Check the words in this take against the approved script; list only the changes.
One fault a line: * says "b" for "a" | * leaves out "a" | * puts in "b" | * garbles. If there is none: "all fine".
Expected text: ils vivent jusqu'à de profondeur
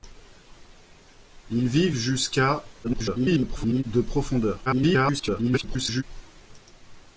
* garbles
* garbles